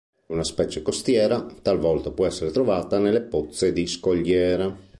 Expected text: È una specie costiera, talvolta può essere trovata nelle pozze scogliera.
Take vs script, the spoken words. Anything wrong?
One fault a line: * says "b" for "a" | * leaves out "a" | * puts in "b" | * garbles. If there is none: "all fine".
* puts in "di"